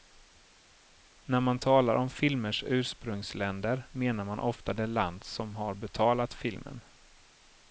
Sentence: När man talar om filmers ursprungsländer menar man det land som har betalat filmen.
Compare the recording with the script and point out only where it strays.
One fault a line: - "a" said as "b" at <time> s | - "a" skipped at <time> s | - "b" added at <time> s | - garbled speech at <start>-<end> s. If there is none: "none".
- "ofta" added at 4.4 s